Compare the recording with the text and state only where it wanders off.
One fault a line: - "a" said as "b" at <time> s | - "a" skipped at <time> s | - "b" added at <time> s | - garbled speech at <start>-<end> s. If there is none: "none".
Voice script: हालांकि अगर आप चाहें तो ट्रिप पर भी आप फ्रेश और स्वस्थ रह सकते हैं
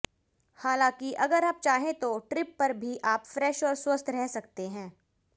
none